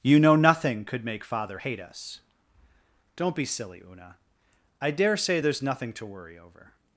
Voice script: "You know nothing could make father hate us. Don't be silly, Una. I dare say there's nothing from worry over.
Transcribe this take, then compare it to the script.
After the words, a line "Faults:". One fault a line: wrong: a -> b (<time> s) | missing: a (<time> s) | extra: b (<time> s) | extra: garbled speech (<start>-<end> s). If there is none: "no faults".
"You know nothing could make father hate us. Don't be silly, Una. I dare say there's nothing to worry over.
Faults:
wrong: from -> to (5.9 s)